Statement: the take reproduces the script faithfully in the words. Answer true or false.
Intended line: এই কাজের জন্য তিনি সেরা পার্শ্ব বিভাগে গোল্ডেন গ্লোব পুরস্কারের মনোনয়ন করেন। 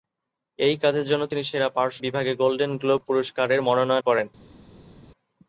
true